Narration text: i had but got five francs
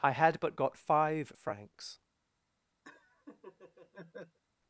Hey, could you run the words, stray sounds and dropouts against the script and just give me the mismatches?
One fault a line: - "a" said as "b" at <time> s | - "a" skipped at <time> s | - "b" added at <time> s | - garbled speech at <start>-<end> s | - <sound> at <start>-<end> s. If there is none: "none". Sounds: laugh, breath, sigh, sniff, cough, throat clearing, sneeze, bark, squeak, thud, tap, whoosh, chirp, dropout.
- laugh at 2.8-4.4 s